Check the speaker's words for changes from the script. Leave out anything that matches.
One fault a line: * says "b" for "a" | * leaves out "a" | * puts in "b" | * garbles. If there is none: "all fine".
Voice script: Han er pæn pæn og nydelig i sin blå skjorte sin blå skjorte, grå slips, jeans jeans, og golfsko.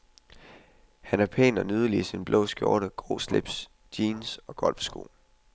* leaves out "pæn"
* leaves out "sin blå skjorte"
* leaves out "jeans"